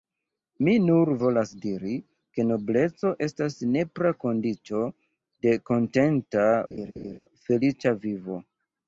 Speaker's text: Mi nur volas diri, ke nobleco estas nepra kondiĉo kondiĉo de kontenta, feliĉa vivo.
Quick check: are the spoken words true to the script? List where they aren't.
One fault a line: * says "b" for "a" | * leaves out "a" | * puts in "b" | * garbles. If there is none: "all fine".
* leaves out "kondiĉo"